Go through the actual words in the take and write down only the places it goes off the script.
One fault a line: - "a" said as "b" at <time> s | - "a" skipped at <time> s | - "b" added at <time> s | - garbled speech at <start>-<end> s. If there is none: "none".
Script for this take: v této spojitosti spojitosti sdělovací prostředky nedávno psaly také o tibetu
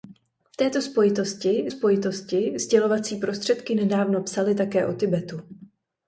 none